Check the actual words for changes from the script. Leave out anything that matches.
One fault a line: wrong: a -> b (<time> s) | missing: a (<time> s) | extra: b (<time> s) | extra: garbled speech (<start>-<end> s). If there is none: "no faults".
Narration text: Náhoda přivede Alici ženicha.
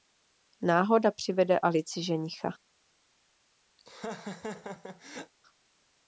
no faults